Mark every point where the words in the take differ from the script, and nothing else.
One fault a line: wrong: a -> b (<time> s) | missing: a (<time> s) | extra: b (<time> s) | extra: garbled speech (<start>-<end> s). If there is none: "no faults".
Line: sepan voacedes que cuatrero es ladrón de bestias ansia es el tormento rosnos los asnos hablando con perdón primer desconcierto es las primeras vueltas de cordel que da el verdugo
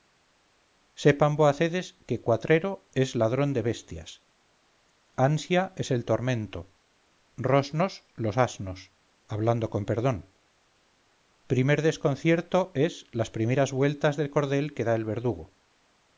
no faults